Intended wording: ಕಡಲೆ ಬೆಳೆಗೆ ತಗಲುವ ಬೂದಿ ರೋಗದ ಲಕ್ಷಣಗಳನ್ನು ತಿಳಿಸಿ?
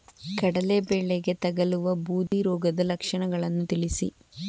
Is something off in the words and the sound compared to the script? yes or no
yes